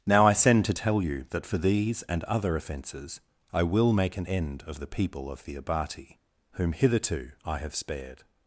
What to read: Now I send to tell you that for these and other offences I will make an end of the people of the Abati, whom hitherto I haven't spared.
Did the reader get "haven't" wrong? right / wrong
wrong